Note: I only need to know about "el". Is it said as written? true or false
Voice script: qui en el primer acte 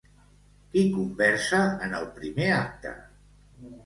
true